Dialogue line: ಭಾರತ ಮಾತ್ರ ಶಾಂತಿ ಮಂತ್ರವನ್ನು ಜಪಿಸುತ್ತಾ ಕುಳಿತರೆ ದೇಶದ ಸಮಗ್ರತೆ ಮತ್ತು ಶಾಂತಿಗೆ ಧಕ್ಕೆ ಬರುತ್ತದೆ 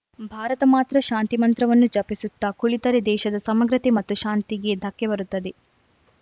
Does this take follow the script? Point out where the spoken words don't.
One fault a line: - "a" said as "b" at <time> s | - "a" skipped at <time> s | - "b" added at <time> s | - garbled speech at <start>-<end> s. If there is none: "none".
none